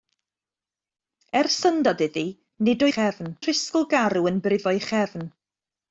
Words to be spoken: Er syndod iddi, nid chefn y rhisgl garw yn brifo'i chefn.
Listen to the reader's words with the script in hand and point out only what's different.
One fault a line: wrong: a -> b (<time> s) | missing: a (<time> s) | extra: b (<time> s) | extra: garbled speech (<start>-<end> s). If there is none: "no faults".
no faults